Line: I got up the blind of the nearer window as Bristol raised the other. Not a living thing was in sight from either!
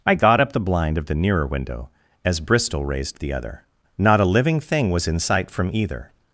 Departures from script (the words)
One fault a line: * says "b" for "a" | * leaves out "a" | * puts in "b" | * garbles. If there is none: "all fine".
all fine